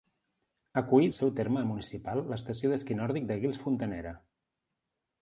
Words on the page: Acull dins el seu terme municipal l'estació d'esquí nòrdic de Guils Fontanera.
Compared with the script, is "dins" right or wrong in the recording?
wrong